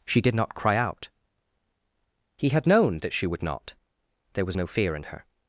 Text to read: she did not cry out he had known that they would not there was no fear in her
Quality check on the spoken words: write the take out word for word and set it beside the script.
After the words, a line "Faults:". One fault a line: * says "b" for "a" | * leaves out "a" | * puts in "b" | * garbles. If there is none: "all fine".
she did not cry out he had known that she would not there was no fear in her
Faults:
* says "she" for "they"